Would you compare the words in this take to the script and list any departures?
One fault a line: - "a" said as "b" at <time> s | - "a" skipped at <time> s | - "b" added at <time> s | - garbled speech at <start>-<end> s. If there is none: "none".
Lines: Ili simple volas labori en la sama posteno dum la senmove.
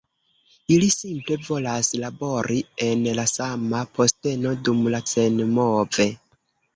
none